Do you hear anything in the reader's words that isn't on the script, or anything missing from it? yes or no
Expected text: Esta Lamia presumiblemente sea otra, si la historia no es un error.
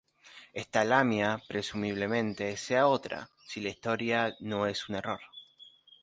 no